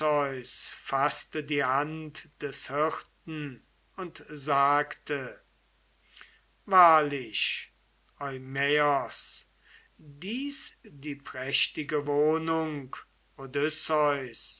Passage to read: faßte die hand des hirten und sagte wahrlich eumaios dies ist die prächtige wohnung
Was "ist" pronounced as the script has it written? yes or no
no